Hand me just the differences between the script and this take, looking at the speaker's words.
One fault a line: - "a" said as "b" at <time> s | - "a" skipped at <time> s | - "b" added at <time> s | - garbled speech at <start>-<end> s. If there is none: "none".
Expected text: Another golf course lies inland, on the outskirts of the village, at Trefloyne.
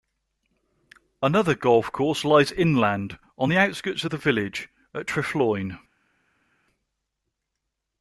none